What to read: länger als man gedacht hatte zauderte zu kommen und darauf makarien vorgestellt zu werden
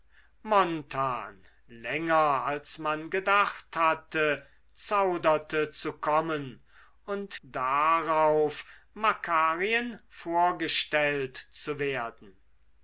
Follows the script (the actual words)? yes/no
yes